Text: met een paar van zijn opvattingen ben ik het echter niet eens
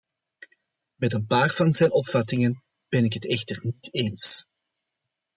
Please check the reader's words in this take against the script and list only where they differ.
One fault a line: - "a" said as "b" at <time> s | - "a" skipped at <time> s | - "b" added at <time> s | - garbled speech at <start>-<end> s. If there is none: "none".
none